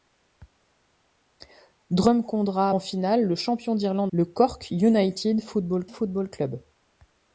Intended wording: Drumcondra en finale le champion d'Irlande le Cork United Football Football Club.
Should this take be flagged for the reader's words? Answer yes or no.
no